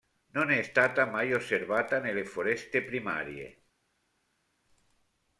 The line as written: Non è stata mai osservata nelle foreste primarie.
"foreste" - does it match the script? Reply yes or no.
yes